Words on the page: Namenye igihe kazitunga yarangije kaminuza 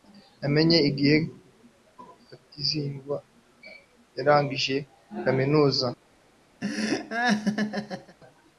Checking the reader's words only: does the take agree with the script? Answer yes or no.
yes